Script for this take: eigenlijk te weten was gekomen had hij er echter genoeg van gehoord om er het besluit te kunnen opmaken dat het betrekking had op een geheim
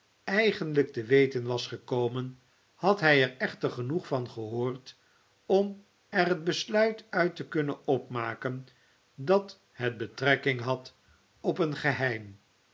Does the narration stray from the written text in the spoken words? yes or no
yes